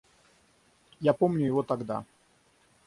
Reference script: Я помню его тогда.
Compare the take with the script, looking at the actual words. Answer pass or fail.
pass